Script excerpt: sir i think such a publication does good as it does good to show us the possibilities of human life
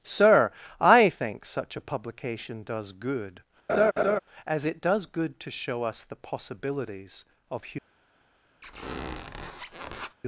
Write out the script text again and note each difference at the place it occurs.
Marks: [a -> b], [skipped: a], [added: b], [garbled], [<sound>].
sir i think such a publication does good [laugh] as it does good to show us the possibilities of human [skipped: life] [squeak]